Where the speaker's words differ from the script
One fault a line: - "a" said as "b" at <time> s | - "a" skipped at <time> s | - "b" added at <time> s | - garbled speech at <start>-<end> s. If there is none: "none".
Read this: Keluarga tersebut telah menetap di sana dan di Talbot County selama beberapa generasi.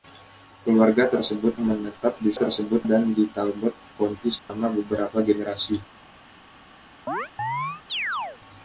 - "telah" skipped at 1.6 s
- "sana" said as "tersebut" at 2.3 s